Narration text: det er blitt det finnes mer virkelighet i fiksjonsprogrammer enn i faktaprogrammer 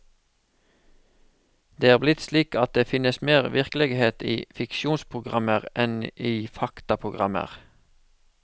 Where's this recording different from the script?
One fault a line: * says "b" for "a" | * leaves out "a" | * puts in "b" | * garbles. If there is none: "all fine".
* puts in "slik at"